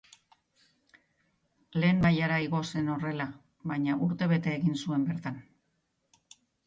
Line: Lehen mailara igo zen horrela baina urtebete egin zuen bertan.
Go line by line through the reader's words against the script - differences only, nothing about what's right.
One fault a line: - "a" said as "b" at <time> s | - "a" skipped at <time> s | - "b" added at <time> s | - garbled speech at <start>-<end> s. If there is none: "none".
none